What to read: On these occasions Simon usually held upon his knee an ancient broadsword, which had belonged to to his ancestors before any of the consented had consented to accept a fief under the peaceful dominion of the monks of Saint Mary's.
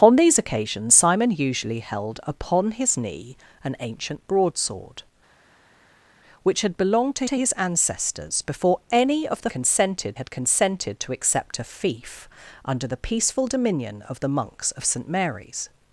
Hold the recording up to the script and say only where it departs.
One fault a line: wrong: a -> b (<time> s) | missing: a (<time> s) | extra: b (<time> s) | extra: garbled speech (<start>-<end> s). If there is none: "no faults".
no faults